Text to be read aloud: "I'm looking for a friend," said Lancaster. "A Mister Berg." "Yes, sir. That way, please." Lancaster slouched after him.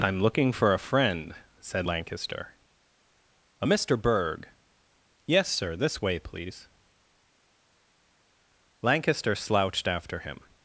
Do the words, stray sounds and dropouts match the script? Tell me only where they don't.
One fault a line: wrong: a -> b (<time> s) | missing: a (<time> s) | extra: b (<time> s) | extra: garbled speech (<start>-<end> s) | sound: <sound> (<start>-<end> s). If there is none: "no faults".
wrong: That -> This (5.7 s)